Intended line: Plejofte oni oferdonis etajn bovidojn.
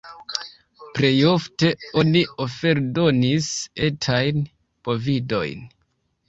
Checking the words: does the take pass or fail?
pass